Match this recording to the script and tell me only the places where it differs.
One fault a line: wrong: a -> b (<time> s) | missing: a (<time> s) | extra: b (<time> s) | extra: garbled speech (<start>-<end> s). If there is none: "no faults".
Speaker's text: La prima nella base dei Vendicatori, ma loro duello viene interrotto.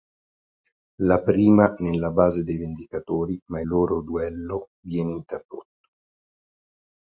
no faults